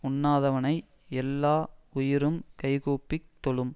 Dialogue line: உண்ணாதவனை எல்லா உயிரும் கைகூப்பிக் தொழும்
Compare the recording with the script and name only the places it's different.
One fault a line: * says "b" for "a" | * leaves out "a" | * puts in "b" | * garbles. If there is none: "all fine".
all fine